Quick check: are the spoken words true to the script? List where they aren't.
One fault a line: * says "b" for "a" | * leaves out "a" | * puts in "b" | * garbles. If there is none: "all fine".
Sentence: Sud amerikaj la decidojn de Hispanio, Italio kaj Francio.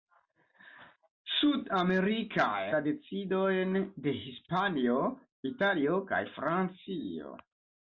all fine